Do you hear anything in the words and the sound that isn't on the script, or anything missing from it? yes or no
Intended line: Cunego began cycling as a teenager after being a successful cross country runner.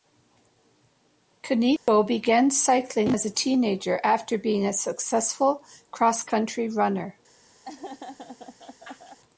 yes